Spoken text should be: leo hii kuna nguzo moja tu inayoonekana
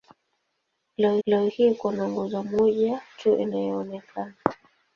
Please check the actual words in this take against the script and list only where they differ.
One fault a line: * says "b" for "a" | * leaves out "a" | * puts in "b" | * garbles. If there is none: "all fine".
* puts in "leo"